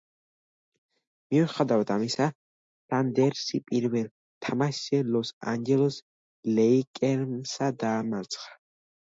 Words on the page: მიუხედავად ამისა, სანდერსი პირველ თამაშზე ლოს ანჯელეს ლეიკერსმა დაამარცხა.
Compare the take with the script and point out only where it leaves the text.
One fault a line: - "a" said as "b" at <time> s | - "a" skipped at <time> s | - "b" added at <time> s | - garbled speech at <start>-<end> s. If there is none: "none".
none